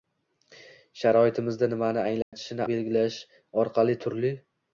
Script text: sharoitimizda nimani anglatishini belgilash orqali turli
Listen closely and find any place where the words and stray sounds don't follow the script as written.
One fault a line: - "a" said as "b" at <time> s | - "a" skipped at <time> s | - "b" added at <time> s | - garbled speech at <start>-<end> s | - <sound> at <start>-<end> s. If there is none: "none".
- dropout at 2.2-2.3 s